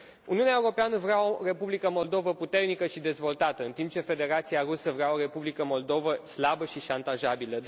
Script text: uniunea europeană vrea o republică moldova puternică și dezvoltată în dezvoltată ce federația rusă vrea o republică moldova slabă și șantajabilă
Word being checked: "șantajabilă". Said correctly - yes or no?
yes